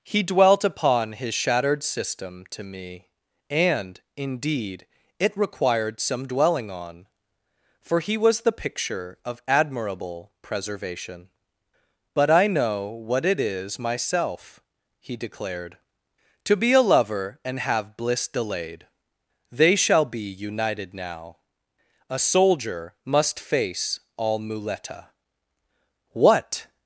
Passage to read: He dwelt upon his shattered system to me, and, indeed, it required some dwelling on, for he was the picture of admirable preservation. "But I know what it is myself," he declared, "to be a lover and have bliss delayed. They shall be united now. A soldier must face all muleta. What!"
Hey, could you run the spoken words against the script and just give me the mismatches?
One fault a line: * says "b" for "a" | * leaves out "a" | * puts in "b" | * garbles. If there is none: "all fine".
all fine